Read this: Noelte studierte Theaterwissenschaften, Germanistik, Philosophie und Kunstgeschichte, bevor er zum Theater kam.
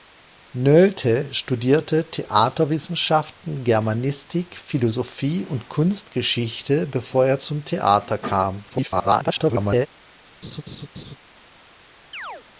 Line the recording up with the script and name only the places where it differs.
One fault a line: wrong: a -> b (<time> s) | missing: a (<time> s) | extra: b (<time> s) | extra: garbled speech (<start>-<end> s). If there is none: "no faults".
extra: garbled speech (8.7-9.9 s)